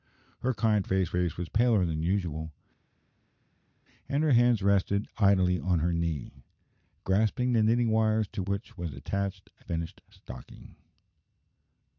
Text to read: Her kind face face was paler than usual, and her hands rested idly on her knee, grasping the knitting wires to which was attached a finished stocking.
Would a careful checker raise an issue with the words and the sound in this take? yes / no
no